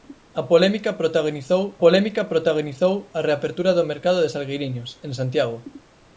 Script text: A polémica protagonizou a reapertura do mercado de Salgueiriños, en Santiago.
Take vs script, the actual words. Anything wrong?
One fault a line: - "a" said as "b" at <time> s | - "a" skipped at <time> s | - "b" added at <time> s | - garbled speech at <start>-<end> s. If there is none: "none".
- "polémica protagonizou" added at 1.8 s